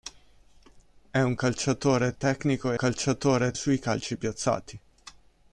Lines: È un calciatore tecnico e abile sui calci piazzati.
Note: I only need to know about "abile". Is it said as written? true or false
false